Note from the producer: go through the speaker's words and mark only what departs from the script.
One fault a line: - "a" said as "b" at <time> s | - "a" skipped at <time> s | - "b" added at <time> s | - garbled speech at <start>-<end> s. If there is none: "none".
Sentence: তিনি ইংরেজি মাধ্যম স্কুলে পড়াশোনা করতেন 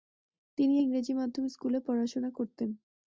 none